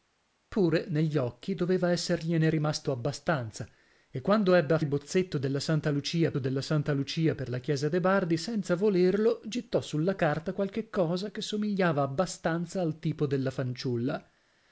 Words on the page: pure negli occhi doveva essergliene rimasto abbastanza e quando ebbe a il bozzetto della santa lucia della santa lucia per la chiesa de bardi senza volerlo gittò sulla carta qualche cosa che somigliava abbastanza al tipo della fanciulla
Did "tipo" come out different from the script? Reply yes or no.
no